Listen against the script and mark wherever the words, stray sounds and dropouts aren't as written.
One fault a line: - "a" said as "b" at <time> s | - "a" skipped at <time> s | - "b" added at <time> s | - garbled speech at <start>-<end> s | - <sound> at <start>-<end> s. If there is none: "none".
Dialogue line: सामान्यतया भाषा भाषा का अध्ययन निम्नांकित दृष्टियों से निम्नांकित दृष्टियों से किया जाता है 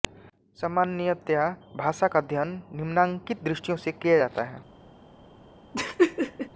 - "भाषा" skipped at 2.1 s
- "निम्नांकित दृष्टियों से" skipped at 3.9 s
- laugh at 5.7-6.5 s